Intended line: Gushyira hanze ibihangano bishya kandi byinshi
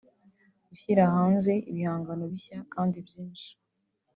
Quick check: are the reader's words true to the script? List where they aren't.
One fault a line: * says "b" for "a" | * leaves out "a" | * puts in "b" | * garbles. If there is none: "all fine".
all fine